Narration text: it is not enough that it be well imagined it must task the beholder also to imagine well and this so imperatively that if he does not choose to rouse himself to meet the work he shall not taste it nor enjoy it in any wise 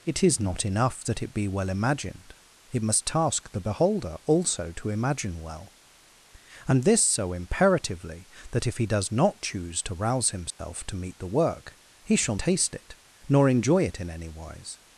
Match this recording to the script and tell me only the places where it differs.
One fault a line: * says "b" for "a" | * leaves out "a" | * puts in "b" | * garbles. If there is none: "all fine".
* leaves out "not"